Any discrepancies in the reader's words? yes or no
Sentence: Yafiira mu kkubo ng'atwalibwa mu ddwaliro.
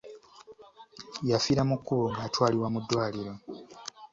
no